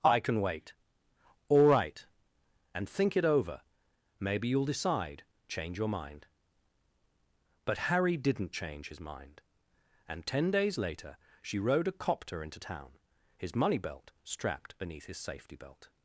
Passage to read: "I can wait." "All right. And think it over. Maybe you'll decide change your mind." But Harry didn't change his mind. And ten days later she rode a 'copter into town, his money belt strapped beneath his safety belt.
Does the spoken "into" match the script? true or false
true